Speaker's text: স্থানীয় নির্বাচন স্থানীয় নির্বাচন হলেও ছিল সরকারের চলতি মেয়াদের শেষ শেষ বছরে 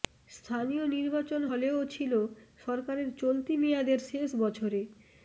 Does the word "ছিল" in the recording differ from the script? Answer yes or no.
no